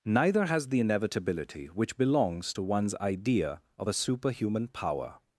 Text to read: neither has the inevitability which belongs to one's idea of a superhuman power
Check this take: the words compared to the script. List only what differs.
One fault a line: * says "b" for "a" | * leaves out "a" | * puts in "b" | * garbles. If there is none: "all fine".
all fine